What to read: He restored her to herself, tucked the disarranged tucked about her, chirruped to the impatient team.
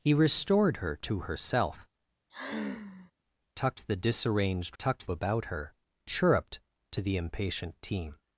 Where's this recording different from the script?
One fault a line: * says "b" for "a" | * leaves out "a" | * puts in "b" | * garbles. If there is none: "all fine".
all fine